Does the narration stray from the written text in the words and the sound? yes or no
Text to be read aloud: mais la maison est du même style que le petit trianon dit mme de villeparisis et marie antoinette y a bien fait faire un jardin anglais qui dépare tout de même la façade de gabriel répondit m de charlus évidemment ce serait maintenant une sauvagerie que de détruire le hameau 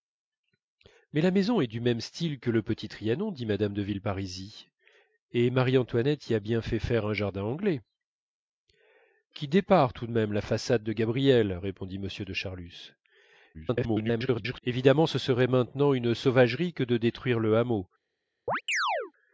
yes